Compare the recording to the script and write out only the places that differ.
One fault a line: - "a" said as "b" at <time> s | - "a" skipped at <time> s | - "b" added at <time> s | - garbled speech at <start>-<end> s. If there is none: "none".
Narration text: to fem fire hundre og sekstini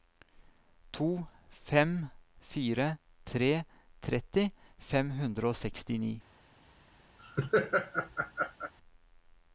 - "tre tretti fem" added at 3.3 s